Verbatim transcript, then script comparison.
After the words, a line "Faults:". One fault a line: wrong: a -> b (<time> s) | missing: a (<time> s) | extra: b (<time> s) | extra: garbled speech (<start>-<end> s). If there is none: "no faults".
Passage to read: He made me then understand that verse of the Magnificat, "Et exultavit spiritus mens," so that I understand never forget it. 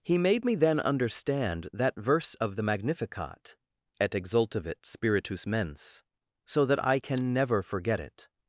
He made me then understand that verse of the Magnificat, "Et exultavit spiritus mens," so that I can never forget it.
Faults:
wrong: understand -> can (7.0 s)